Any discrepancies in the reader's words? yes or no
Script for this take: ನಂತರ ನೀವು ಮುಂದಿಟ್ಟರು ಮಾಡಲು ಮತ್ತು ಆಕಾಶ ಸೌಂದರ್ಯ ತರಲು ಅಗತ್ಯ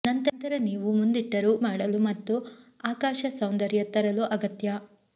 no